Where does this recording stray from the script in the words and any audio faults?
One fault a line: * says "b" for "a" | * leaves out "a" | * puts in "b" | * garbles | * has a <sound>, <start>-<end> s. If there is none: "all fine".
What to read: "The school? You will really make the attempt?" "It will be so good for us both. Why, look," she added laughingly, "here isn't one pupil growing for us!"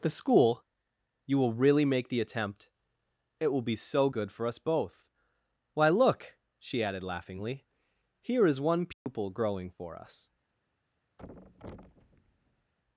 * says "is" for "isn't"
* has a dropout, 8.9-9.1 s
* has a thud, 11.2-12.7 s